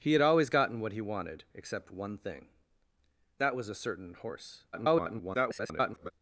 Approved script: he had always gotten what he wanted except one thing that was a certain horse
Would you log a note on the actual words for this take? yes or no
yes